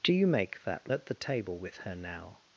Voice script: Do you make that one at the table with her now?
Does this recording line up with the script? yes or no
no